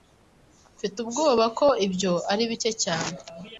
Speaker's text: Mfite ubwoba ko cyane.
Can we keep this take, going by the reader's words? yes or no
no